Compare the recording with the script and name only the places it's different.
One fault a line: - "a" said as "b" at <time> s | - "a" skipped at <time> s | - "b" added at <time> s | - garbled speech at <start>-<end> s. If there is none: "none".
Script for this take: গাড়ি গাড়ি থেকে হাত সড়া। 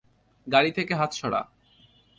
- "গাড়ি" skipped at 0.7 s